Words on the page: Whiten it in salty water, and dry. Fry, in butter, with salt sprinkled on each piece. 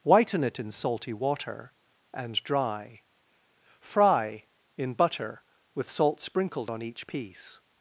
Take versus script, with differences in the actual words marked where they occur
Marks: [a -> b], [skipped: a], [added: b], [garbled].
Whiten it in salty water, and dry. Fry, in butter, with salt sprinkled on each piece.